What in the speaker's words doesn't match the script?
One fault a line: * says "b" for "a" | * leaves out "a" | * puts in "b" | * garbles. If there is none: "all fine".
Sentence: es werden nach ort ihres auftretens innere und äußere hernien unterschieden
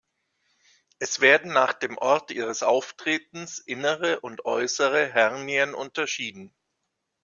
* puts in "dem"